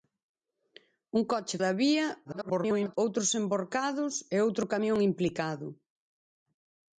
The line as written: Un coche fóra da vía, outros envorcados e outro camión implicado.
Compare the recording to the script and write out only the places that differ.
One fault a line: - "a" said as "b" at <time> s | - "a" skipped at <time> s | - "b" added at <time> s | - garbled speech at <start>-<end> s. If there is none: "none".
- "fóra" skipped at 1.6 s
- garbled speech at 2.2-3.0 s